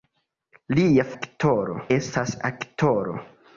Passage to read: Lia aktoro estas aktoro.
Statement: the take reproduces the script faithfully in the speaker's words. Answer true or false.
true